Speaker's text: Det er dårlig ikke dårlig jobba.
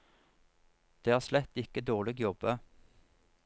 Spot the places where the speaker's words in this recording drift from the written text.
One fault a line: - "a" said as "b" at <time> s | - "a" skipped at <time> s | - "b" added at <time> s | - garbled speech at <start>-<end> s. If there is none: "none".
- "dårlig" said as "slett" at 1.2 s